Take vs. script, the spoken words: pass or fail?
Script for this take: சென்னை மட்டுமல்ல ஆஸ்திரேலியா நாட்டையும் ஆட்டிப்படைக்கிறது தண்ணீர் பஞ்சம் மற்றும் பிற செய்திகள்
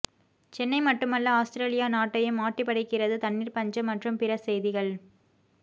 pass